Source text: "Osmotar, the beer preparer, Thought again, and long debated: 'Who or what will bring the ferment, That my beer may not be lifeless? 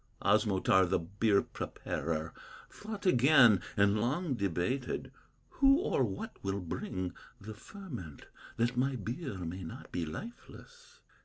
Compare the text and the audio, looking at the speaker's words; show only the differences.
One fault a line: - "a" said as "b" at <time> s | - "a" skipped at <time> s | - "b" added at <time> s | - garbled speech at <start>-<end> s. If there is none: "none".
none